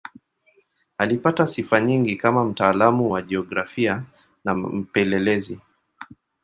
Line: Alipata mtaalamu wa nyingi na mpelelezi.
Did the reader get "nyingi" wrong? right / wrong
wrong